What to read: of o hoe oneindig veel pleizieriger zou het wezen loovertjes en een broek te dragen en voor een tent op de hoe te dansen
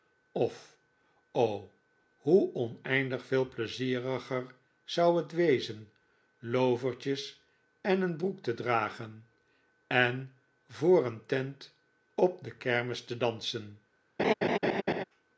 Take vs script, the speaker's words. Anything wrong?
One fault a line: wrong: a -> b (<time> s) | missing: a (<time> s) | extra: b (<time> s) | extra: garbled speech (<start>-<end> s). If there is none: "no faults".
wrong: hoe -> kermis (12.5 s)